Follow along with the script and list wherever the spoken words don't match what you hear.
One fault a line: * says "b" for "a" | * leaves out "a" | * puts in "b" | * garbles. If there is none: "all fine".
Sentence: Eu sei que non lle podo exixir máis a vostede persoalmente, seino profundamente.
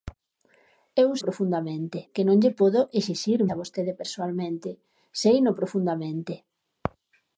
* says "profundamente" for "sei"
* leaves out "máis"